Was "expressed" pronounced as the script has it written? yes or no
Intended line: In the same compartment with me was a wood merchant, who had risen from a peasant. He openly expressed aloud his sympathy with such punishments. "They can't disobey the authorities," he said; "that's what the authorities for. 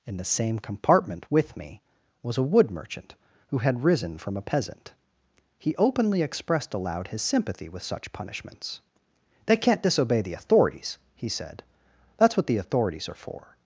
yes